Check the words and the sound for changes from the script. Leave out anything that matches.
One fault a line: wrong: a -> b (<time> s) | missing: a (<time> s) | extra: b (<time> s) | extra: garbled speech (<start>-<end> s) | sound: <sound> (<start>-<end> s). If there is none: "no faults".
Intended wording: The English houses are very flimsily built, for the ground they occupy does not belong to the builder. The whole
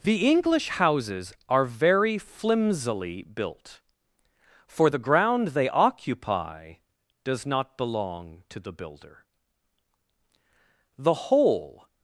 no faults